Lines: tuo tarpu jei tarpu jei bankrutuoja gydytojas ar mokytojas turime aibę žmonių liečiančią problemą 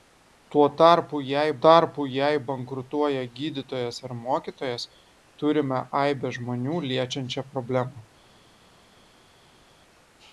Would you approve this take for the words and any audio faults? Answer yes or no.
yes